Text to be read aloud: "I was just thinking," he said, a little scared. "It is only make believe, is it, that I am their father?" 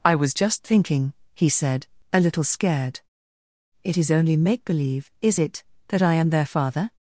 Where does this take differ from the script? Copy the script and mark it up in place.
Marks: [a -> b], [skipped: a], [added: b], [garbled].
"I was just thinking," he said, a little scared. "It is only make believe, is it, that I am their father?"